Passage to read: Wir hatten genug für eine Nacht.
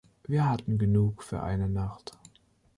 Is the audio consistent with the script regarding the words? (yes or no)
yes